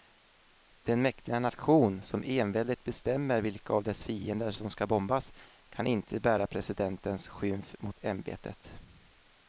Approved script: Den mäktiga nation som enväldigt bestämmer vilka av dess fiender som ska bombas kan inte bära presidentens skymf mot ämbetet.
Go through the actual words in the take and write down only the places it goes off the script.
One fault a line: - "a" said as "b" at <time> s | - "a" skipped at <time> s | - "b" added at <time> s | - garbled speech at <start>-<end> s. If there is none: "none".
none